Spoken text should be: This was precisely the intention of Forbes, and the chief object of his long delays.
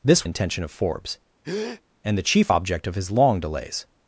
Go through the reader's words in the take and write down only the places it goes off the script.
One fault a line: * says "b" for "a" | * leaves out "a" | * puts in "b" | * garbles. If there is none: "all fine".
* leaves out "was precisely the"